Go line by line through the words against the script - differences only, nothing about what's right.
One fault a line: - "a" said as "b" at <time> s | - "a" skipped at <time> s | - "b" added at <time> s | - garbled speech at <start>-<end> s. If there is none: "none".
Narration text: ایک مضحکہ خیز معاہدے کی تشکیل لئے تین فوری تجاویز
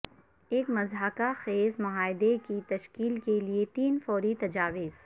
- "کے" added at 3.2 s